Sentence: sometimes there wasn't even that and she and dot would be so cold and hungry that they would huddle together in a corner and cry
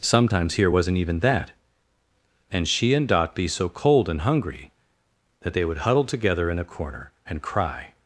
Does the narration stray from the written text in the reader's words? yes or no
yes